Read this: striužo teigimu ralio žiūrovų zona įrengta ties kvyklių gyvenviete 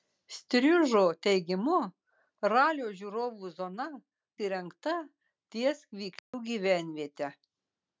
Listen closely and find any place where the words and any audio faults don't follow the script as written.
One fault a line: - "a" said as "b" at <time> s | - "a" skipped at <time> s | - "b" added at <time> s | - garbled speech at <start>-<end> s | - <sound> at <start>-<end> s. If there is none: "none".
- dropout at 6.2-6.3 s